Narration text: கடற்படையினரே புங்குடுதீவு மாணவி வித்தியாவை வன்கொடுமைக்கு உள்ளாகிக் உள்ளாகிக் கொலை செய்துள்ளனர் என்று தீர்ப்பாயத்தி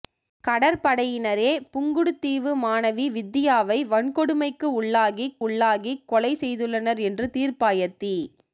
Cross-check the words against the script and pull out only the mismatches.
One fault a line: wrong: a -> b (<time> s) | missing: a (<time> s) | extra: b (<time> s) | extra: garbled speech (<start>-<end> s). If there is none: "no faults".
no faults